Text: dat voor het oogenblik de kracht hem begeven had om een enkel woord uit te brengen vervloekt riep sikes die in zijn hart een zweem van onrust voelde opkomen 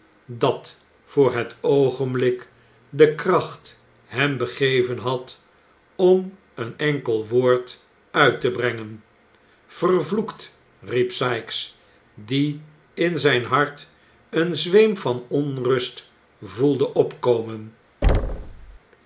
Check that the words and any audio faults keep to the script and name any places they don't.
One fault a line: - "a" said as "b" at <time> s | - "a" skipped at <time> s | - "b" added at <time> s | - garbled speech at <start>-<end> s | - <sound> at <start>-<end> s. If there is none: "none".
- thud at 18.0-18.8 s